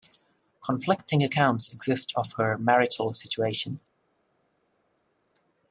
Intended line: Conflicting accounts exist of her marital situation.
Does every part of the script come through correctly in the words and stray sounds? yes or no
yes